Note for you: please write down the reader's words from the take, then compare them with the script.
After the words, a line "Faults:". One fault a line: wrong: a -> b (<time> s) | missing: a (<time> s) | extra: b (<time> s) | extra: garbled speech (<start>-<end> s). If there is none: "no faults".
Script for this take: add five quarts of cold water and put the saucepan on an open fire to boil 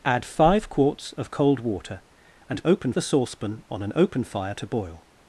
add five quarts of cold water and open the saucepan on an open fire to boil
Faults:
wrong: put -> open (2.6 s)